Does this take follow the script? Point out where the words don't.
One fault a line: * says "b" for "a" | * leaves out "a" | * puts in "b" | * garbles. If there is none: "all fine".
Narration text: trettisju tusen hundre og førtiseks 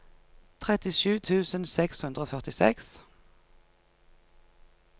* puts in "seks"